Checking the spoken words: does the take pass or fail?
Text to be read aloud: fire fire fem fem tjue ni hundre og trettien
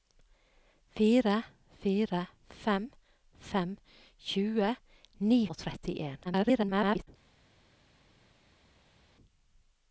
fail